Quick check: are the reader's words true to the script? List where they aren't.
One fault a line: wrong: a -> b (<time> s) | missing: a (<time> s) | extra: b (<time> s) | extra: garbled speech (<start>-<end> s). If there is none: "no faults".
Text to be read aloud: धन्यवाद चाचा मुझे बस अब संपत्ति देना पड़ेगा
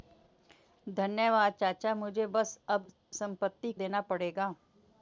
no faults